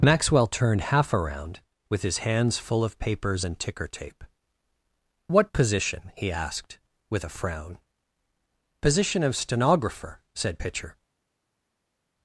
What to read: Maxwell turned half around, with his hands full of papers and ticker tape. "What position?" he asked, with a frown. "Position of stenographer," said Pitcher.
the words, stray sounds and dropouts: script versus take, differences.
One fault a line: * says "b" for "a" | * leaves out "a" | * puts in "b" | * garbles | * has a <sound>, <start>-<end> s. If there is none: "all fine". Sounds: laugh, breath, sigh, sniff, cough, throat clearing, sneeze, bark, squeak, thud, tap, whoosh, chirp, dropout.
all fine